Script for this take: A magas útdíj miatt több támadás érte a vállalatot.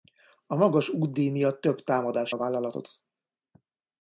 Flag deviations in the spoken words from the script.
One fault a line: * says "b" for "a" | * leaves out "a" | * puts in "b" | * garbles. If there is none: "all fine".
* leaves out "érte"